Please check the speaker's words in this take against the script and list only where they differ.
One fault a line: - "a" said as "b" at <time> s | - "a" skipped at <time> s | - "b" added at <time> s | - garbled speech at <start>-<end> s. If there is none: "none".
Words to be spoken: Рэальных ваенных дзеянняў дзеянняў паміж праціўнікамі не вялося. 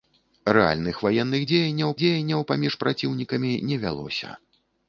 none